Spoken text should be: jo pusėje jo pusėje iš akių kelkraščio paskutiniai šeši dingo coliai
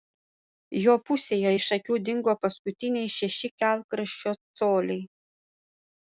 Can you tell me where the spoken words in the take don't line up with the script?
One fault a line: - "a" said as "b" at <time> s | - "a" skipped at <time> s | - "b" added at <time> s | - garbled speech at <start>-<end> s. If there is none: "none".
- "jo pusėje" skipped at 1.5 s
- "kelkraščio" said as "dingo" at 2.1 s
- "dingo" said as "kelkraščio" at 3.6 s